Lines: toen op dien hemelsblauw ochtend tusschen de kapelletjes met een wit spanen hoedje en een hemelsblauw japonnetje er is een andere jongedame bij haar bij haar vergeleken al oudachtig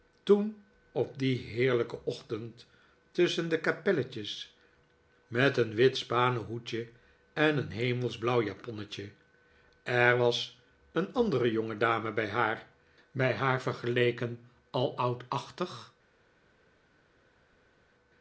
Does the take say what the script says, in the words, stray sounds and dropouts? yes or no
no